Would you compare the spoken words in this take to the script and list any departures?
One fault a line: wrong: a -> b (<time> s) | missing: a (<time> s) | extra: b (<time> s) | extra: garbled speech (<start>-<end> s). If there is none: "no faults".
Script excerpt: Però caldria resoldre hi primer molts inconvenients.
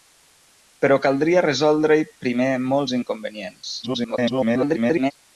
extra: garbled speech (3.8-5.1 s)